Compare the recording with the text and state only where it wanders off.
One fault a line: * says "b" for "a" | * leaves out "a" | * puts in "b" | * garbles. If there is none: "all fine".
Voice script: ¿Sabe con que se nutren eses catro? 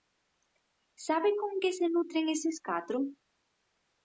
all fine